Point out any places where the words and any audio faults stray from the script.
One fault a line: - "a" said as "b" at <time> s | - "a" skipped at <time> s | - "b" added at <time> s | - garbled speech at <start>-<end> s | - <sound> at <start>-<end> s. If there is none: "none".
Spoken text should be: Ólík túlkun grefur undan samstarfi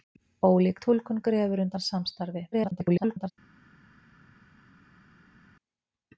- garbled speech at 2.5-3.3 s